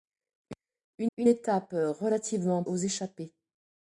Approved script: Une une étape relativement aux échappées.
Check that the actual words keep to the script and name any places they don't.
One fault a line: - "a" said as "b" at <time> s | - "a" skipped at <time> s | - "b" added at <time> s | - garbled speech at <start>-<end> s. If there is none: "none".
none